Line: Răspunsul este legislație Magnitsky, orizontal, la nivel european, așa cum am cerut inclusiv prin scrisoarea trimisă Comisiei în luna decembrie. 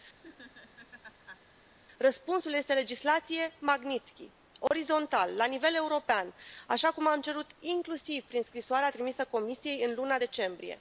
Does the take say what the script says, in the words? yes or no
yes